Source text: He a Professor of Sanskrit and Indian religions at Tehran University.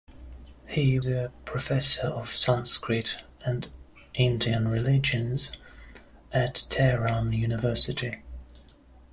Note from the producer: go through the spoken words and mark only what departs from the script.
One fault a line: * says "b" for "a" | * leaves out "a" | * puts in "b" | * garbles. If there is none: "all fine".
all fine